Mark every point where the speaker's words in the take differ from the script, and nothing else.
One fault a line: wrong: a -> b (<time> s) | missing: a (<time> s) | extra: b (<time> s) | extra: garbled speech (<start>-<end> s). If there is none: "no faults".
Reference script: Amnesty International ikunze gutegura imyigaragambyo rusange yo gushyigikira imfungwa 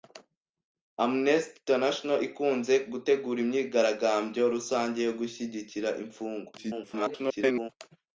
extra: garbled speech (6.6-7.7 s)